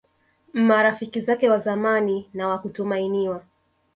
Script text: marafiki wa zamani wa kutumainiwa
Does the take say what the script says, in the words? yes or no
no